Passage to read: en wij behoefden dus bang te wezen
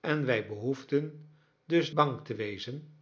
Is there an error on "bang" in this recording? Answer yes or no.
no